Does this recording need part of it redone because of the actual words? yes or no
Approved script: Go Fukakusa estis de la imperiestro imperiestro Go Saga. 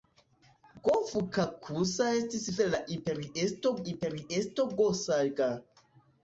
no